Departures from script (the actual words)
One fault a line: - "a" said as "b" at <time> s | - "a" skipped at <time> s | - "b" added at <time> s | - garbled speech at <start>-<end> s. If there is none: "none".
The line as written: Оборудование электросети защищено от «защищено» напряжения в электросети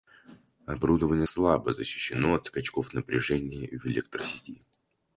- "электросети" said as "слабо" at 1.2 s
- "защищено" said as "скачков" at 2.4 s